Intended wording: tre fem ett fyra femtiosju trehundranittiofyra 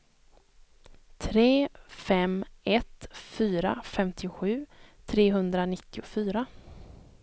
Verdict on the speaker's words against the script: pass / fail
pass